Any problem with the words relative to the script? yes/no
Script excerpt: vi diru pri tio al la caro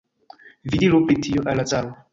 no